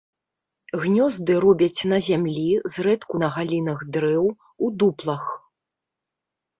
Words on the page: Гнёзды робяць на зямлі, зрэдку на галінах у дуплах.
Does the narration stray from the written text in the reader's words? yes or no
yes